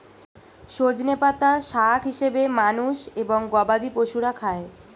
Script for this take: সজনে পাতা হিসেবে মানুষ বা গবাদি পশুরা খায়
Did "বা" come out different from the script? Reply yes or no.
yes